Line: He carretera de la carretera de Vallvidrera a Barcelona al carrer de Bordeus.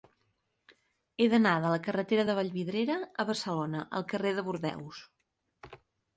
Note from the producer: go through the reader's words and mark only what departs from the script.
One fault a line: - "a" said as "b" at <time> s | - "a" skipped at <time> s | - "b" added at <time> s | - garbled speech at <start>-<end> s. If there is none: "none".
- "carretera" said as "d'anar" at 1.3 s